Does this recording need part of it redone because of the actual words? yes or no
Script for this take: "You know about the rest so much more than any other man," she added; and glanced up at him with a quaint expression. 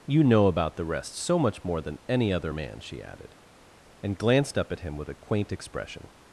no